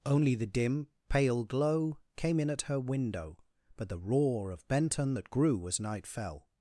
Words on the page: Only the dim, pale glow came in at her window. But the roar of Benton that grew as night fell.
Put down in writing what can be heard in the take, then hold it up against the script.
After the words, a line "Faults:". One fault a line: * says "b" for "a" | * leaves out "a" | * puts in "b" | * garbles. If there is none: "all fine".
Only the dim, pale glow came in at her window. But the roar of Benton that grew as night fell.
Faults:
all fine